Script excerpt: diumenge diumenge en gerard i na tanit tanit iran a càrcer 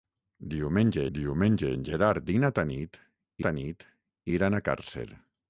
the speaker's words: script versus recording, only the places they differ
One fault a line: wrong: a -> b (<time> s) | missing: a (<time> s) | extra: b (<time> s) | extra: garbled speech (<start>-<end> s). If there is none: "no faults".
no faults